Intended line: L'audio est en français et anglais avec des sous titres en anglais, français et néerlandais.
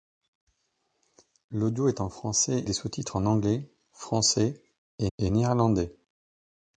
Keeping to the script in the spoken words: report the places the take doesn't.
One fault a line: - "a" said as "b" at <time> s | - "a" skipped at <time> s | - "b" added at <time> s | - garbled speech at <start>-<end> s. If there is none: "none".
- "et anglais avec" skipped at 2.6 s
- "et" added at 5.2 s